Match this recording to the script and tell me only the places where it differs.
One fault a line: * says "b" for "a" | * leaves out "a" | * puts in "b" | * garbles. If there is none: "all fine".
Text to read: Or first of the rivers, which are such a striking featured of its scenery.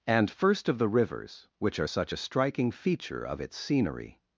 * says "And" for "Or"
* says "feature" for "featured"